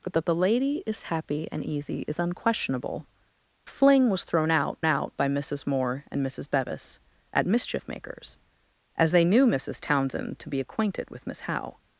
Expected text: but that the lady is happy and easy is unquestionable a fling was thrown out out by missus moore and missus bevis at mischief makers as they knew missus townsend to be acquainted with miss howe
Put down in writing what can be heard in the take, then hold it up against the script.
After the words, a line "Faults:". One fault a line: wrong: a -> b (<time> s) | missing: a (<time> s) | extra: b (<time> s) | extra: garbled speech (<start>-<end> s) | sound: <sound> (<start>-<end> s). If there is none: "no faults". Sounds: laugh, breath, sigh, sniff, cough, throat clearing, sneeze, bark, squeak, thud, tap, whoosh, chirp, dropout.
but that the lady is happy and easy is unquestionable a fling was thrown out out by missus moore and missus bevis at mischief makers as they knew missus townsend to be acquainted with miss howe
Faults:
no faults